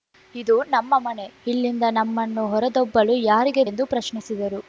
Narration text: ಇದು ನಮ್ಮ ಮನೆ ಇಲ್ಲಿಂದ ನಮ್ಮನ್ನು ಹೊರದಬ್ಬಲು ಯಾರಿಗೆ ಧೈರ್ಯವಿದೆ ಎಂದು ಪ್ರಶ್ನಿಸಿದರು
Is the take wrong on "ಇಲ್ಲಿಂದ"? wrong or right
right